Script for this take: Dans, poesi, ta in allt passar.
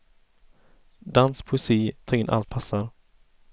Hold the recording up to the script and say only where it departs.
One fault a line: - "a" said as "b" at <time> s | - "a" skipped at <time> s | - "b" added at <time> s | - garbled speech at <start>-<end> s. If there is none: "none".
none